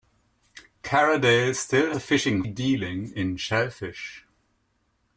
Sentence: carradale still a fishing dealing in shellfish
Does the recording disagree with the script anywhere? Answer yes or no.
no